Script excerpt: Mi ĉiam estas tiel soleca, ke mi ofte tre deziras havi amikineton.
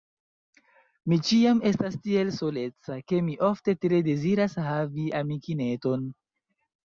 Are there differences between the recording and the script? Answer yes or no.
no